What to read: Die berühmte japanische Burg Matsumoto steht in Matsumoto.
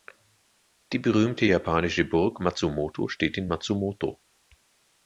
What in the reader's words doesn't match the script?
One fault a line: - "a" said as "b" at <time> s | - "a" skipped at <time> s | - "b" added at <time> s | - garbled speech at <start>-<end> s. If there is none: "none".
none